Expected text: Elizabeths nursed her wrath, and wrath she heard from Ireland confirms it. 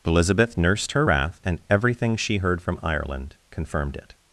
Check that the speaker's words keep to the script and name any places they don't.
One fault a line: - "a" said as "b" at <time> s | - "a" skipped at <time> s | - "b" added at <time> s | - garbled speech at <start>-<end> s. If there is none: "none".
- "Elizabeths" said as "Elizabeth" at 0.1 s
- "wrath" said as "everything" at 1.7 s
- "confirms" said as "confirmed" at 3.5 s